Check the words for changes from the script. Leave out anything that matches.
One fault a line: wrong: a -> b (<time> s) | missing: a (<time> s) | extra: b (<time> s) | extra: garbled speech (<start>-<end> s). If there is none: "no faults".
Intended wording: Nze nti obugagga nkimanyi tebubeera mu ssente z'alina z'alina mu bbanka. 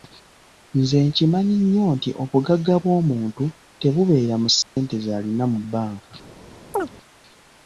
extra: nkimanyi nnyo (1.1 s)
wrong: nkimanyi -> bw'omuntu (2.8 s)
missing: z'alina (5.4 s)